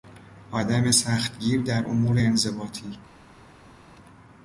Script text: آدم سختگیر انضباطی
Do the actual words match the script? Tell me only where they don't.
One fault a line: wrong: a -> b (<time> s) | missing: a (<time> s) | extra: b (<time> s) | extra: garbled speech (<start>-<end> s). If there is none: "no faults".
extra: در امور (1.6 s)